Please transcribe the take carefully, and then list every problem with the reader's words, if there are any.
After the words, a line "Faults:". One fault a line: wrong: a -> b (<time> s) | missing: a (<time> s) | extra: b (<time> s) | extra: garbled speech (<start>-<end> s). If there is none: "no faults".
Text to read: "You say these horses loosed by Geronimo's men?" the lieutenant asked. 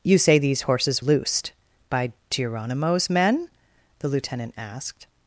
"You say these horses loosed by Geronimo's men?" the lieutenant asked.
Faults:
no faults